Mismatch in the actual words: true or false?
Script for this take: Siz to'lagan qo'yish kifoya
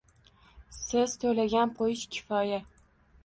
false